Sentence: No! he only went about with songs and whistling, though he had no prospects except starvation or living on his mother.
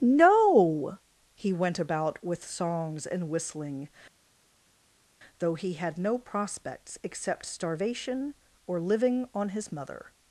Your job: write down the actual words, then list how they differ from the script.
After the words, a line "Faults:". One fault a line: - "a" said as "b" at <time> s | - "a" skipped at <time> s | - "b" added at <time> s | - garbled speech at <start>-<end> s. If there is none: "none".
No! he went about with songs and whistling, though he had no prospects except starvation or living on his mother.
Faults:
- "only" skipped at 1.5 s